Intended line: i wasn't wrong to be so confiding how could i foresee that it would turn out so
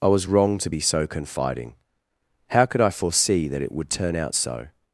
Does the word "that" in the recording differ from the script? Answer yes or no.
no